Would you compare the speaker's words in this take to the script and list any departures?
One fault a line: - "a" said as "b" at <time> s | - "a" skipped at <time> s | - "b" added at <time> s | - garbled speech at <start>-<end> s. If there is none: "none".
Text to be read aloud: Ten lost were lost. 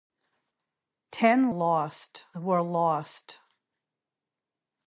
none